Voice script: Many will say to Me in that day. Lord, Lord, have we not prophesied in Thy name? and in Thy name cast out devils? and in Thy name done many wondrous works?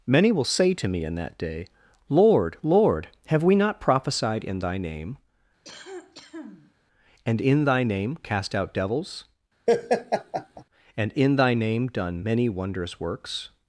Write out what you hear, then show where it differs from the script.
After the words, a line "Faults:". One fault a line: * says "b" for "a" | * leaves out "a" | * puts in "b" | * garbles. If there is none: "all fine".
Many will say to Me in that day. Lord, Lord, have we not prophesied in Thy name? and in Thy name cast out devils? and in Thy name done many wondrous works?
Faults:
all fine